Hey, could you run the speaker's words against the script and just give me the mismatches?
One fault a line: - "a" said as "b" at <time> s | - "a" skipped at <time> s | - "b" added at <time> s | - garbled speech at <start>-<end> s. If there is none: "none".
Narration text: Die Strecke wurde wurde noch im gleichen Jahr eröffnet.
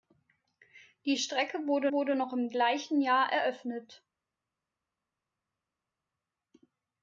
none